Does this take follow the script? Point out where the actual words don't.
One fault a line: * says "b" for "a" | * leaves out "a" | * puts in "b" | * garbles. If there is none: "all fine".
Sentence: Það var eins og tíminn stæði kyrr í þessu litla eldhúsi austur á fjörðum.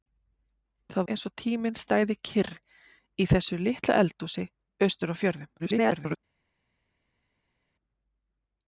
* leaves out "var"
* garbles